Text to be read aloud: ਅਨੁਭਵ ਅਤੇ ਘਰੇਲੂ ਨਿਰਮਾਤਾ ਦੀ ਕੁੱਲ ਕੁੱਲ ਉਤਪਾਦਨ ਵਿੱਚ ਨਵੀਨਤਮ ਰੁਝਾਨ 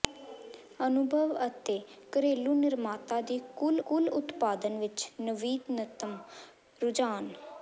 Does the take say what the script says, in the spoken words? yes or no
yes